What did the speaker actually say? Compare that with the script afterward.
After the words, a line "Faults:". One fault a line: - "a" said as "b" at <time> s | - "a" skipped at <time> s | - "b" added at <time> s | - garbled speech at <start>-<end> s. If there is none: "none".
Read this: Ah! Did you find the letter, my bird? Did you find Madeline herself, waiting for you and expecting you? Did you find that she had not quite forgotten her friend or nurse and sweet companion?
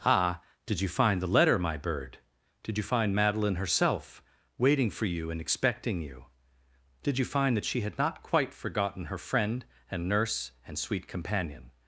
Ah! Did you find the letter, my bird? Did you find Madeline herself, waiting for you and expecting you? Did you find that she had not quite forgotten her friend and nurse and sweet companion?
Faults:
- "or" said as "and" at 9.9 s